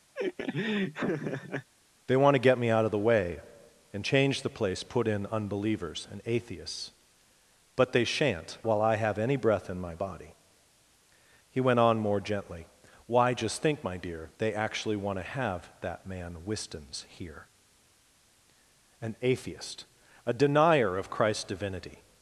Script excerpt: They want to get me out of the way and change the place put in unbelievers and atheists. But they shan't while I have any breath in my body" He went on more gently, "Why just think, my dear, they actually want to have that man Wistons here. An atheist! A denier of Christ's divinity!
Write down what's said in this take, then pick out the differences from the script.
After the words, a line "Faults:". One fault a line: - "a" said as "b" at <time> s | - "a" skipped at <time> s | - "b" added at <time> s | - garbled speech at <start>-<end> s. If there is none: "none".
They want to get me out of the way and change the place put in unbelievers and atheists. But they shan't while I have any breath in my body" He went on more gently, "Why just think, my dear, they actually want to have that man Wistons here. An atheist! A denier of Christ's divinity!
Faults:
none